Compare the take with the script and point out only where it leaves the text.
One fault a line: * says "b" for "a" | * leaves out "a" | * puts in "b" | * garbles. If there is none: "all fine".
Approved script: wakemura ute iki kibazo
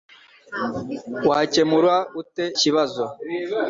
* leaves out "iki"